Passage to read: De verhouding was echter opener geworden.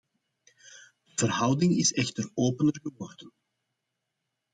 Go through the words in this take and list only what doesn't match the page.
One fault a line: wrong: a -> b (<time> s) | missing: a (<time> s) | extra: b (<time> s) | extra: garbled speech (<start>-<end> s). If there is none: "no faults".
wrong: was -> is (1.8 s)